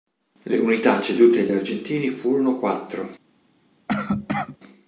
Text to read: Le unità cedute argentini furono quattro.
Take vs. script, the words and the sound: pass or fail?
fail